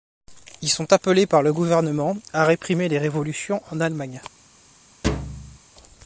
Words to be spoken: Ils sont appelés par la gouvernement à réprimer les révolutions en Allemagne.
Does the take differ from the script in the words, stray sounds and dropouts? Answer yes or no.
yes